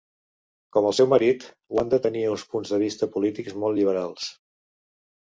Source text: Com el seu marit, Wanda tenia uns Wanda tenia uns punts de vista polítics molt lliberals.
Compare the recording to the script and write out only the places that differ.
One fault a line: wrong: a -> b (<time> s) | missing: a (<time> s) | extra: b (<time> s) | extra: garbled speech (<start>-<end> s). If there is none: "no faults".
missing: Wanda tenia uns (2.4 s)